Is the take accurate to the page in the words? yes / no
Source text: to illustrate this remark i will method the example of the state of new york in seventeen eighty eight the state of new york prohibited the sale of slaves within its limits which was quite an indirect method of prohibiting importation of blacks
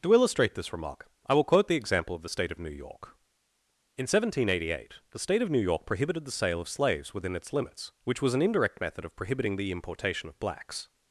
no